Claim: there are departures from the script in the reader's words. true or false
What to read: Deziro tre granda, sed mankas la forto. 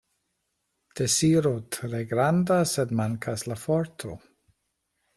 false